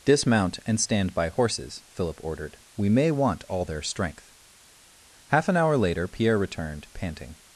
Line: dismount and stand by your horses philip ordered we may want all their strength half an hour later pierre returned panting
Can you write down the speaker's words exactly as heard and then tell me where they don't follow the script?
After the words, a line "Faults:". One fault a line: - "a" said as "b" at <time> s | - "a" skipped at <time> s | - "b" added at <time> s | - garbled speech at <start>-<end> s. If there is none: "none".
dismount and stand by horses philip ordered we may want all their strength half an hour later pierre returned panting
Faults:
- "your" skipped at 1.3 s